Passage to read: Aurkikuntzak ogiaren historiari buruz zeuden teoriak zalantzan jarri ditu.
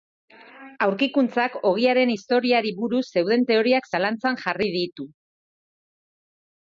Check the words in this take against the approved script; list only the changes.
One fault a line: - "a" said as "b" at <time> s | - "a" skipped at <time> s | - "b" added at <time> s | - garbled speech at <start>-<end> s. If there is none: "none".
none